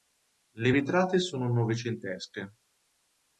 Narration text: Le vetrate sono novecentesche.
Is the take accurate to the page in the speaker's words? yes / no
yes